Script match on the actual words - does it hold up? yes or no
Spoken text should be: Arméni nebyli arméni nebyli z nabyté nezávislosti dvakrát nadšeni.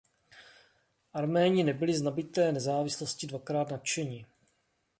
no